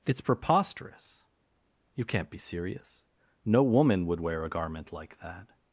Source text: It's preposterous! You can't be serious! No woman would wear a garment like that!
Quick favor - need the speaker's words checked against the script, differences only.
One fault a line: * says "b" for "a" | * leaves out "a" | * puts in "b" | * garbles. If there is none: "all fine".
all fine